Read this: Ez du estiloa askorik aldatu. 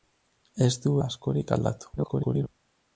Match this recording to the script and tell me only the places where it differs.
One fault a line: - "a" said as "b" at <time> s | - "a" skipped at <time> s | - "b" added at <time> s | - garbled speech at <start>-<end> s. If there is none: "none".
- "estiloa" skipped at 0.9 s
- garbled speech at 2.0-2.5 s